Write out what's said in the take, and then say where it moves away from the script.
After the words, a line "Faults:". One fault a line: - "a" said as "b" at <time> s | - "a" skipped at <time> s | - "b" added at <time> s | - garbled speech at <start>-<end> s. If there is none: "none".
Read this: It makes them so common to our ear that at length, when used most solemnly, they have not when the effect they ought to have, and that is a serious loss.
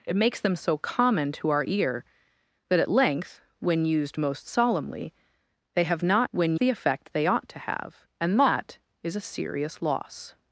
It makes them so common to our ear that at length, when used most solemnly, they have not when the effect they ought to have, and that is a serious loss.
Faults:
none